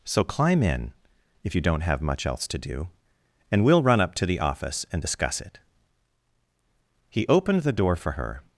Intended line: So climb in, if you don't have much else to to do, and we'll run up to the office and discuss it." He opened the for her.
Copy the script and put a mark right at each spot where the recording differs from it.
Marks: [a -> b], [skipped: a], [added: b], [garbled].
So climb in, if you don't have much else to [skipped: to] do, and we'll run up to the office and discuss it." He opened the [added: door] for her.